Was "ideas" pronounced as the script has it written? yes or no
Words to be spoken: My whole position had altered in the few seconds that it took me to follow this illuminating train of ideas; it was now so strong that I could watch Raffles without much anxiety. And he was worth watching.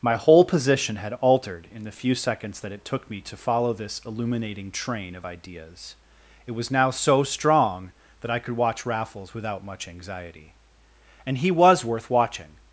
yes